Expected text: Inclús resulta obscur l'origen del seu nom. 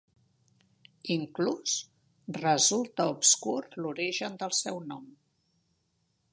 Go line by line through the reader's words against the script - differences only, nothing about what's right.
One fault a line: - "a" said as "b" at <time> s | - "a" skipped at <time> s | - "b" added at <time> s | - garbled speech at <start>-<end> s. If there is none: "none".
none